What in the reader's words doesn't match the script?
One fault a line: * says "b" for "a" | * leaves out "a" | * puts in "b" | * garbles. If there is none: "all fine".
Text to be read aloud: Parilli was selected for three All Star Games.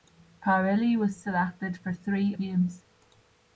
* leaves out "All Star"